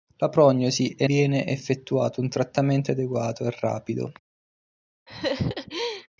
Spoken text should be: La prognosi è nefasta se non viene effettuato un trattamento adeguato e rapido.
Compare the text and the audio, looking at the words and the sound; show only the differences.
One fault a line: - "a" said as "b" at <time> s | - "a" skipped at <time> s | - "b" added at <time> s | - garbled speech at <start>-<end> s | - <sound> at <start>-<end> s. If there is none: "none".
- "nefasta se non" skipped at 1.1 s
- laugh at 5.1-6.1 s